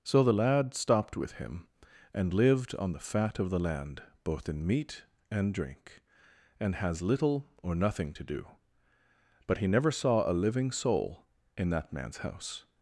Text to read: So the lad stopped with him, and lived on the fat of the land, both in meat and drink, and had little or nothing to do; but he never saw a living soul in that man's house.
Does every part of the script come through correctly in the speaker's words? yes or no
no